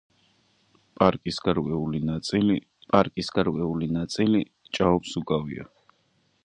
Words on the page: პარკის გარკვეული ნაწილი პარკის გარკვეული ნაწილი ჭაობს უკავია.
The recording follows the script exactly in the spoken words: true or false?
true